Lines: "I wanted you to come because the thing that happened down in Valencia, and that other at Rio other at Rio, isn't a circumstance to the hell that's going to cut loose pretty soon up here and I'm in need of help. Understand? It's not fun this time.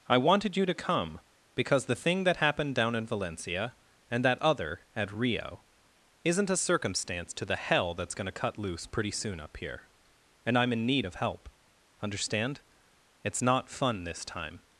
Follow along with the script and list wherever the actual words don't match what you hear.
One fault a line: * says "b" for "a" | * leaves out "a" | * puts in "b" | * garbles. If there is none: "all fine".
* leaves out "other at Rio"